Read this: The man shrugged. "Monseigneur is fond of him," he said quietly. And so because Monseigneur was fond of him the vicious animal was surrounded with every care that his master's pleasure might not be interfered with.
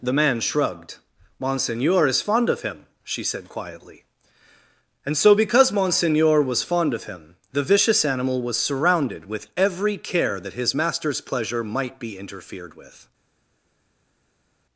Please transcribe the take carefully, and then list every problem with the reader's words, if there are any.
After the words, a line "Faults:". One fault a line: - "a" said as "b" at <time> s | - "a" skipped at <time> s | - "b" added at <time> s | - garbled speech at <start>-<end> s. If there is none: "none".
The man shrugged. "Monseigneur is fond of him," she said quietly. And so because Monseigneur was fond of him the vicious animal was surrounded with every care that his master's pleasure might be interfered with.
Faults:
- "he" said as "she" at 3.0 s
- "not" skipped at 12.0 s